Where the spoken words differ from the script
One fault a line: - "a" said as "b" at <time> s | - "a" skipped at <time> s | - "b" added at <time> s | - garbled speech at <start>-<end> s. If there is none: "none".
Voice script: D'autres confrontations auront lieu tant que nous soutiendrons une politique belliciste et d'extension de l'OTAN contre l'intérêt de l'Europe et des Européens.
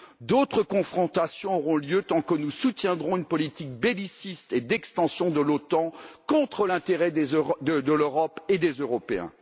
none